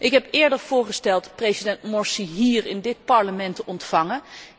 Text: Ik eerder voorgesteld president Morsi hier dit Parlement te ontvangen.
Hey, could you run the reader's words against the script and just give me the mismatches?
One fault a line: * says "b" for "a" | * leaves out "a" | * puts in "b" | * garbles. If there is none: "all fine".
* puts in "heb"
* puts in "in"